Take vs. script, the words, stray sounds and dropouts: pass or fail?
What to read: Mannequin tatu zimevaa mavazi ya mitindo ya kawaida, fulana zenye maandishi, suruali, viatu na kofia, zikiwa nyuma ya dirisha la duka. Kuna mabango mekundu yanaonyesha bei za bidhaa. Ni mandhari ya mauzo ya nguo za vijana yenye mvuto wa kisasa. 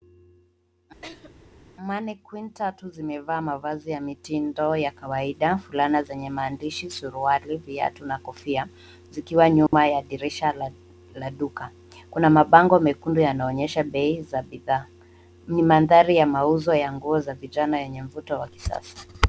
fail